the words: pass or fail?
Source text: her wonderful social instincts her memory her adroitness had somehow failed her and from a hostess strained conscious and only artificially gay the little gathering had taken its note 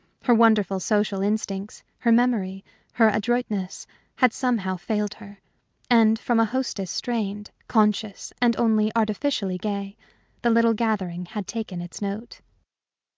pass